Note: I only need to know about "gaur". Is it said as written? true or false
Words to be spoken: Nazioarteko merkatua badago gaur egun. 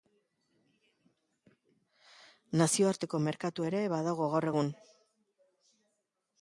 true